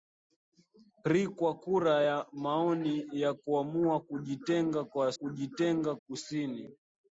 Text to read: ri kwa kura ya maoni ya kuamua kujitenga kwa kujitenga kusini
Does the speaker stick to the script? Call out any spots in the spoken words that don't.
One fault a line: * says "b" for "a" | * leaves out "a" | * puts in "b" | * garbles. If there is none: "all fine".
all fine